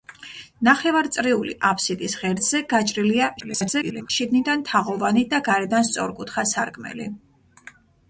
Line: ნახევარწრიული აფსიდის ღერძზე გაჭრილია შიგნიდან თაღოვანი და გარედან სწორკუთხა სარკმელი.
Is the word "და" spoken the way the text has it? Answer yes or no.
yes